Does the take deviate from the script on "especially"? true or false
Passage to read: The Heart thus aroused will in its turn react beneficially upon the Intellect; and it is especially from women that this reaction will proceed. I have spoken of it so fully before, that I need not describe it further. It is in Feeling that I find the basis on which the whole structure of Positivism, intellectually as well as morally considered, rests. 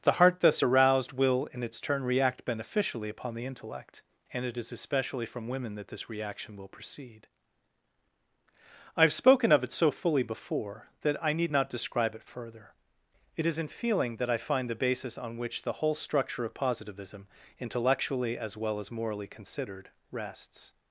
false